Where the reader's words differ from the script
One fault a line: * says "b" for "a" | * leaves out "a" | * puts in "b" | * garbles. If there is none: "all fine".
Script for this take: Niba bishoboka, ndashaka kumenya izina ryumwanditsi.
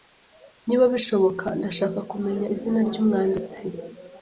all fine